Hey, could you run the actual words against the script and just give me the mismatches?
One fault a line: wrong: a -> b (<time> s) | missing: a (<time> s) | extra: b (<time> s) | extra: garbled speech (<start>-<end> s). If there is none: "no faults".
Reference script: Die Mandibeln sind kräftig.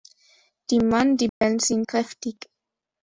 no faults